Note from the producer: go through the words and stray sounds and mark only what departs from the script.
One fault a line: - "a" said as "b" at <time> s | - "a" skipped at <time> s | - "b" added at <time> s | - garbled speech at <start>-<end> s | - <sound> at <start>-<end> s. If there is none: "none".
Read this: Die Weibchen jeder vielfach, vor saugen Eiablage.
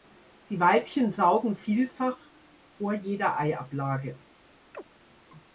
- "jeder" said as "saugen" at 1.1 s
- "saugen" said as "jeder" at 2.9 s
- chirp at 4.7-4.8 s